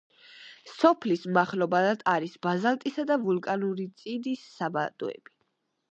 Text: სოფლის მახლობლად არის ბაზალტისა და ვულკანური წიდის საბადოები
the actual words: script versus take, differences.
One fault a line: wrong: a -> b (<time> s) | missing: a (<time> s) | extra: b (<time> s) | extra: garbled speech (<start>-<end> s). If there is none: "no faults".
no faults